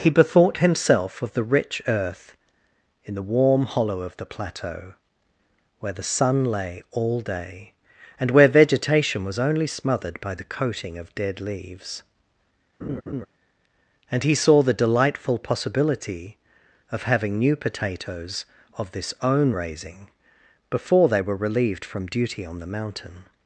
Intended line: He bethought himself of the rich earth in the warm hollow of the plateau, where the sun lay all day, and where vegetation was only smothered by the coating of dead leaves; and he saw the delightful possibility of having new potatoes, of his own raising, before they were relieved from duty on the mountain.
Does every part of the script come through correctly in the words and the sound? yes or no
no